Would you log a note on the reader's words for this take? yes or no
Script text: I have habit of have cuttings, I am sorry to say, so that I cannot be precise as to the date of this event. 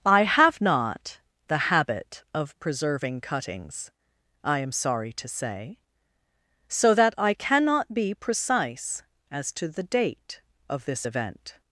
yes